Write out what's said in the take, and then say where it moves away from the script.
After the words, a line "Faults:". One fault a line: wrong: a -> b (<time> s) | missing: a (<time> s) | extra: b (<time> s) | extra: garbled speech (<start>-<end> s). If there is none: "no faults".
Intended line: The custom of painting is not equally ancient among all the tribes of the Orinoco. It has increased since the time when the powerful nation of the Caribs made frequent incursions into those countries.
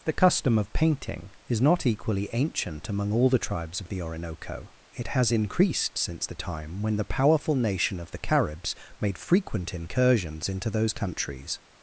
The custom of painting is not equally ancient among all the tribes of the Orinoco. It has increased since the time when the powerful nation of the Caribs made frequent incursions into those countries.
Faults:
no faults